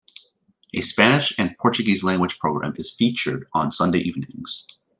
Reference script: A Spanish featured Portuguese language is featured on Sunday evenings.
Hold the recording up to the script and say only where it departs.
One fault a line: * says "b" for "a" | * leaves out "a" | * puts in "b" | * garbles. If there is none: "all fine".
* says "and" for "featured"
* puts in "program"